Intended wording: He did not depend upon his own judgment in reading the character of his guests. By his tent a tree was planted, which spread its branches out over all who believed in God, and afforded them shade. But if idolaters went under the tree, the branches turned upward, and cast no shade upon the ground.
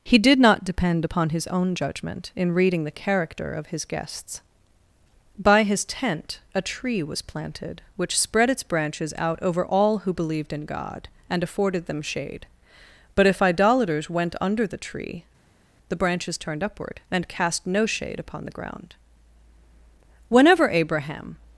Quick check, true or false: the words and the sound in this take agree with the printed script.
false